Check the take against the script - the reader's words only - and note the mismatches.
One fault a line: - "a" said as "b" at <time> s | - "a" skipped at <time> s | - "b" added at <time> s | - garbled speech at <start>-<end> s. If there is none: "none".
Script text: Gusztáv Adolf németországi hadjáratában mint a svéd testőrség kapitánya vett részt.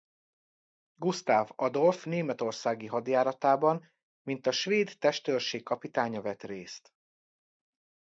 none